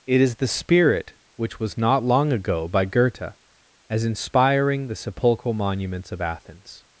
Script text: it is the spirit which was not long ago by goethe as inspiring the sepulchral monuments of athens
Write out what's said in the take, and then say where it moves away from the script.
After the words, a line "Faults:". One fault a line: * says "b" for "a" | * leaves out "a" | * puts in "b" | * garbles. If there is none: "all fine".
it is the spirit which was not long ago by goethe as inspiring the sepulchral monuments of athens
Faults:
all fine